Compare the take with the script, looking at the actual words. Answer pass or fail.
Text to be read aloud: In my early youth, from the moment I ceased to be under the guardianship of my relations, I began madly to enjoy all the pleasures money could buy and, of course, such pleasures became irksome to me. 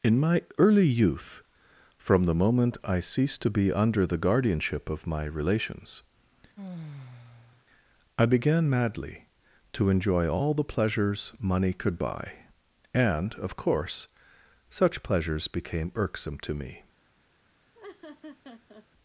pass